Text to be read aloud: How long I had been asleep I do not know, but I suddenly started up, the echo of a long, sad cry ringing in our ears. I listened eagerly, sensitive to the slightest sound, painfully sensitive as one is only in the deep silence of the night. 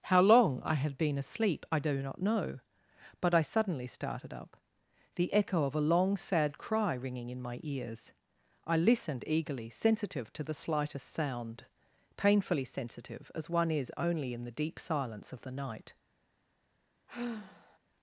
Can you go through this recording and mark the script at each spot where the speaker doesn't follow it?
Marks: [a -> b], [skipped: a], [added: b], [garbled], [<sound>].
How long I had been asleep I do not know, but I suddenly started up, the echo of a long, sad cry ringing in [our -> my] ears. I listened eagerly, sensitive to the slightest sound, painfully sensitive as one is only in the deep silence of the night. [sigh]